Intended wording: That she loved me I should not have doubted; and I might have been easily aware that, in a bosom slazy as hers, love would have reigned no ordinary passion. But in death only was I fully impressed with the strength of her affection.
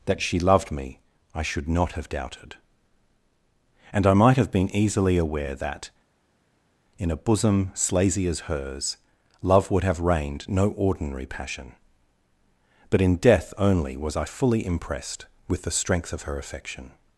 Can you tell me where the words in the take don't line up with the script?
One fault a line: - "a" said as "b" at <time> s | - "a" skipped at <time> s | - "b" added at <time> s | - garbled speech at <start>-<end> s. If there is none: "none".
none